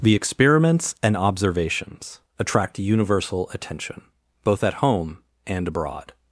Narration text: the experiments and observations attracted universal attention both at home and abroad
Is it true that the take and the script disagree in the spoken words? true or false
true